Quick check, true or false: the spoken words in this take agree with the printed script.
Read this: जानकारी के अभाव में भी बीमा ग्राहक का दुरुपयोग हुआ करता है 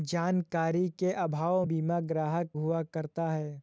false